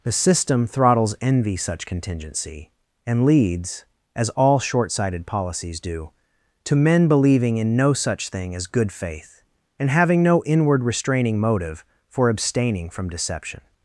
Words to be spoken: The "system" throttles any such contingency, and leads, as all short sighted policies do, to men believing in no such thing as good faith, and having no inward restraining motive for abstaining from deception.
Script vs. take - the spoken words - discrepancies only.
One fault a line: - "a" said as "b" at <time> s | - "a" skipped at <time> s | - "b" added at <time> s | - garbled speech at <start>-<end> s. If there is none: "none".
- "any" said as "envy" at 1.2 s